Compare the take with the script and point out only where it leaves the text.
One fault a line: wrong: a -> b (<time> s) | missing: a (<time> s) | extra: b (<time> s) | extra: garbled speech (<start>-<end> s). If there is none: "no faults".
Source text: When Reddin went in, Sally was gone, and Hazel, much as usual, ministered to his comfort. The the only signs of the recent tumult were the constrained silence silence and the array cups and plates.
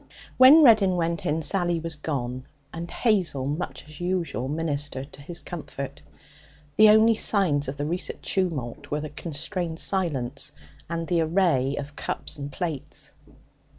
missing: the (6.9 s)
missing: silence (10.5 s)
extra: of (11.8 s)